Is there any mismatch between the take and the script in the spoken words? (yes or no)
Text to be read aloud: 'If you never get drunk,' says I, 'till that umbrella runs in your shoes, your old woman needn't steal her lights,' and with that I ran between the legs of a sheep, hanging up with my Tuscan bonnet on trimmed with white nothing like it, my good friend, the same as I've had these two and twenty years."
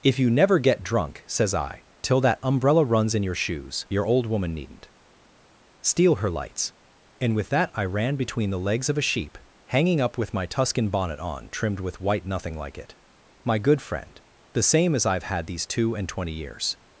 no